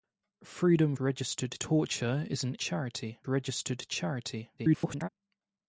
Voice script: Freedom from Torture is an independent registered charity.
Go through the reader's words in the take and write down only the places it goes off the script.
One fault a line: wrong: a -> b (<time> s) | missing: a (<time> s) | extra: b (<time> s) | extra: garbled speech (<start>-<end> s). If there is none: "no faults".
wrong: from -> registered (1.0 s)
wrong: independent -> charity (2.6 s)
extra: garbled speech (4.6-5.1 s)